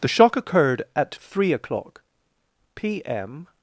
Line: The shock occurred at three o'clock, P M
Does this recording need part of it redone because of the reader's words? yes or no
no